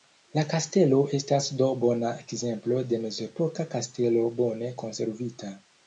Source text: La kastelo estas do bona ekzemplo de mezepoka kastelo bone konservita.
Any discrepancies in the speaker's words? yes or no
no